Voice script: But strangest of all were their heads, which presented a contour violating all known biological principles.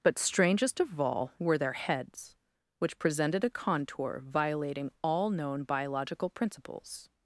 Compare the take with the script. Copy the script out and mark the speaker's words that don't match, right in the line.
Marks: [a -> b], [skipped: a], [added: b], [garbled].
But strangest of all were their heads, which presented a contour violating all known biological principles.